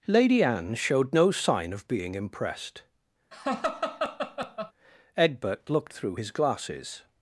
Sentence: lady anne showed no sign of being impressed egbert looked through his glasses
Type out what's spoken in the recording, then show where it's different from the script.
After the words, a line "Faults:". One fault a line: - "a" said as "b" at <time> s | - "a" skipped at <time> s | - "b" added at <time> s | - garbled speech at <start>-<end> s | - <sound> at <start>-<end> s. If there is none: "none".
lady anne showed no sign of being impressed egbert looked through his glasses
Faults:
- laugh at 3.3-4.7 s